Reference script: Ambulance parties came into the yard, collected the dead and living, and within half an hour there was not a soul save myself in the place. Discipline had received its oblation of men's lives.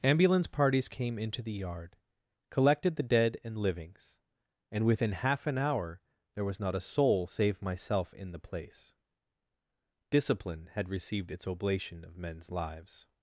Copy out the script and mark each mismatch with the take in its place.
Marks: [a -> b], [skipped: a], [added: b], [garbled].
Ambulance parties came into the yard, collected the dead and [living, -> livings] and within half an hour there was not a soul save myself in the place. Discipline had received its oblation of men's lives.